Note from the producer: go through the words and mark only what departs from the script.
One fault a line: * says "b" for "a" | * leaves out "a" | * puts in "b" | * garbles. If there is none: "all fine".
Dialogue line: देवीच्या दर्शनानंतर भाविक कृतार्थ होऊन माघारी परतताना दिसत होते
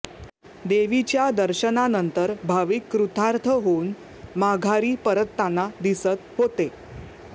all fine